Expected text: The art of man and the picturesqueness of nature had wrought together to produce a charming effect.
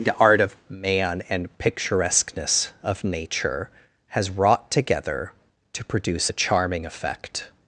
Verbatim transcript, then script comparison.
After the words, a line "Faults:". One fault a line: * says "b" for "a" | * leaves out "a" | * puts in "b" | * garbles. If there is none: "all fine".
The art of man and picturesqueness of nature has wrought together to produce a charming effect.
Faults:
* leaves out "the"
* says "has" for "had"